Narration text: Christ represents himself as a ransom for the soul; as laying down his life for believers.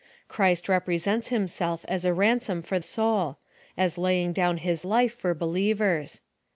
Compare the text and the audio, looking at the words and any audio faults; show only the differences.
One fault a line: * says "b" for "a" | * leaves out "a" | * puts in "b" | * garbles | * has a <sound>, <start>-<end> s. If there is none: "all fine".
* leaves out "the"